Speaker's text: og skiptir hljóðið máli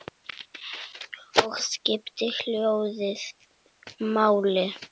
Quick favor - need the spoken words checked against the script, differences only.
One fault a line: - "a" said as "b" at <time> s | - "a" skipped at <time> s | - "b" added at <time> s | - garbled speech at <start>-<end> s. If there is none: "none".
none